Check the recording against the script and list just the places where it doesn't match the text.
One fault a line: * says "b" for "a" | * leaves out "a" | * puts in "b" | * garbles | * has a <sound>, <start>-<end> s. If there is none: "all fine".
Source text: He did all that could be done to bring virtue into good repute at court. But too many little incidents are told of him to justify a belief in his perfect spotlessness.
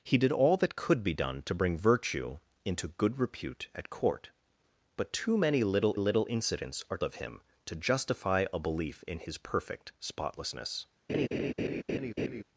* puts in "little"
* leaves out "told"
* has a laugh, 11.1-12.4 s